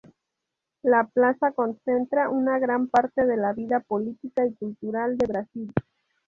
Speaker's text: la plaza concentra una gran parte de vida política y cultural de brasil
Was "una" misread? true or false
false